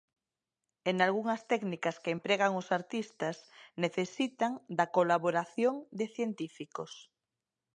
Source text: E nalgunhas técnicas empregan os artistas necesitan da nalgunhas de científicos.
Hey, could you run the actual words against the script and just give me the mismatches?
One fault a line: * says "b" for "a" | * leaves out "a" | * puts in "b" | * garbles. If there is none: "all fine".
* puts in "que"
* says "colaboración" for "nalgunhas"